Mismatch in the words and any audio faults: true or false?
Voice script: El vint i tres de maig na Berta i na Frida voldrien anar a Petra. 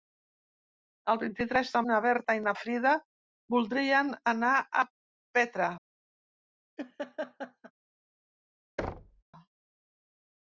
true